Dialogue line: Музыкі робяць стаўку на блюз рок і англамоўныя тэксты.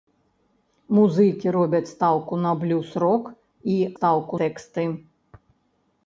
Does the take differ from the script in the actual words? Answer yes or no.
yes